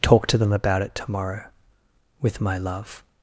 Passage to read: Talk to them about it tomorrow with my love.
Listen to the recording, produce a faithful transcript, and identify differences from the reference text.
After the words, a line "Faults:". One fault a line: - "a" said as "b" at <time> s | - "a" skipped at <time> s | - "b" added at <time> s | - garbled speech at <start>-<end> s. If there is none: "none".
Talk to them about it tomorrow with my love.
Faults:
none